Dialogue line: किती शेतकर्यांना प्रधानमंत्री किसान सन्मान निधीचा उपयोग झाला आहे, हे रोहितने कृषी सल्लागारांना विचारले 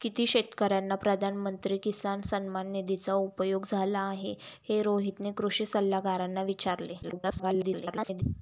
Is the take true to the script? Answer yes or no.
no